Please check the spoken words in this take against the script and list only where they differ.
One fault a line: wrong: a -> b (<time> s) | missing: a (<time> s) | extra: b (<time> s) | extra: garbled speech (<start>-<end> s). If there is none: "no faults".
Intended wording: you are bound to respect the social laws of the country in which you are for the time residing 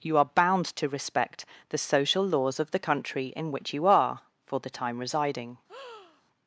no faults